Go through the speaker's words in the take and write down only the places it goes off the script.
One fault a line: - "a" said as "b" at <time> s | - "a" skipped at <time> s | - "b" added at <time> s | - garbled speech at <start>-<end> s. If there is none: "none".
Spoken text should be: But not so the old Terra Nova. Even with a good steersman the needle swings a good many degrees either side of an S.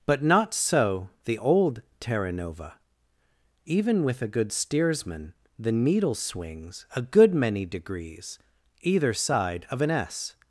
none